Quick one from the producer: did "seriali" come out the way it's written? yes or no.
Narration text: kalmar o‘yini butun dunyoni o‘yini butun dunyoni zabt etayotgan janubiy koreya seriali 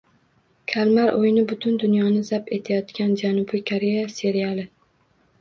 yes